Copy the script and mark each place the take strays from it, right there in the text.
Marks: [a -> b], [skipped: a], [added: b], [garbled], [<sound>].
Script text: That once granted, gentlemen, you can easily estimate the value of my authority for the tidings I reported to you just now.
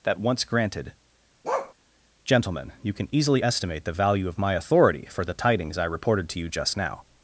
That once granted, [bark] gentlemen, you can easily estimate the value of my authority for the tidings I reported to you just now.